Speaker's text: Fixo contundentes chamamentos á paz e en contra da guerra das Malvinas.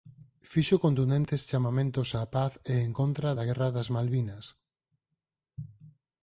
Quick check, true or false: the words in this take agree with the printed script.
true